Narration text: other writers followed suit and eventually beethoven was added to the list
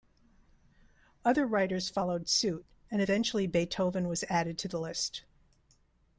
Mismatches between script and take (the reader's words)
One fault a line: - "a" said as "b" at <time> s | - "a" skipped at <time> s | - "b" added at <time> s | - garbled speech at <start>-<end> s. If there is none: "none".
none